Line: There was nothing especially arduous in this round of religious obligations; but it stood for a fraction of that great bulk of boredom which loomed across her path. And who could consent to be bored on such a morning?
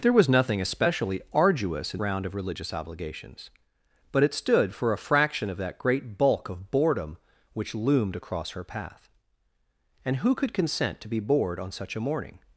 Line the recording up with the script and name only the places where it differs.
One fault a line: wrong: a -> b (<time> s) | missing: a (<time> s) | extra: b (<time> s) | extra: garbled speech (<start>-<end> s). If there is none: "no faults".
missing: this (2.0 s)